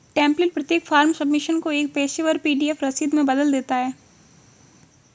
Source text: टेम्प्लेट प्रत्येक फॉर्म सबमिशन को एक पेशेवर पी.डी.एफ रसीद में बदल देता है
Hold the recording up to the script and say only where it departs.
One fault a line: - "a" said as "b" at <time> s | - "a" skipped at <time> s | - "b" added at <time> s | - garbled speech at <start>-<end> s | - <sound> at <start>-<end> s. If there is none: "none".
none